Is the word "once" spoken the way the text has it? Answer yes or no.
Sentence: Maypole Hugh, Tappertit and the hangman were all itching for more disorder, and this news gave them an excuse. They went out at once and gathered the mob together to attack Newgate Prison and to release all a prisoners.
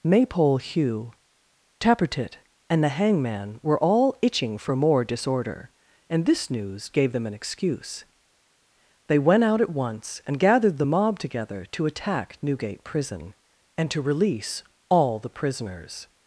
yes